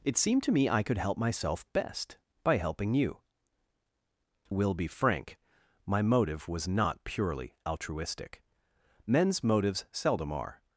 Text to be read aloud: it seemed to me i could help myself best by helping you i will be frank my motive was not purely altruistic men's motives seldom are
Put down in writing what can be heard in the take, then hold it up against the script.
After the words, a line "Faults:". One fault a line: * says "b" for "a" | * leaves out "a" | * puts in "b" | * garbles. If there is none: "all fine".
it seemed to me i could help myself best by helping you will be frank my motive was not purely altruistic men's motives seldom are
Faults:
* leaves out "i"